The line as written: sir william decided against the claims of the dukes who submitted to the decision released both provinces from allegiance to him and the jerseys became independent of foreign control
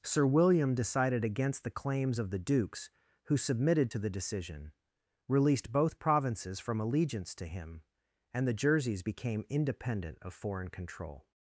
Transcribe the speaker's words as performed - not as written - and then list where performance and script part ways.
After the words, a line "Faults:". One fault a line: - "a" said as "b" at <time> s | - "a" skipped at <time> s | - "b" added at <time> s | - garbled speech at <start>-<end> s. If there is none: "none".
sir william decided against the claims of the dukes who submitted to the decision released both provinces from allegiance to him and the jerseys became independent of foreign control
Faults:
none